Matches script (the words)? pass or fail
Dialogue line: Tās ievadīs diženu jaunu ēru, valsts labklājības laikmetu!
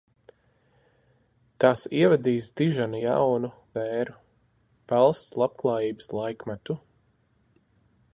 pass